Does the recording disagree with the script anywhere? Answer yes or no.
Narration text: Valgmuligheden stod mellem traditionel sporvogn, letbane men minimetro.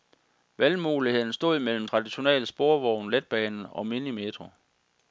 yes